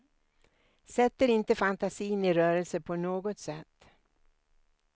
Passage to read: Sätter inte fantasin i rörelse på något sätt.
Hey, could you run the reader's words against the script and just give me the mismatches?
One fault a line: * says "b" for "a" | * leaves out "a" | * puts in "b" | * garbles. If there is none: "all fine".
all fine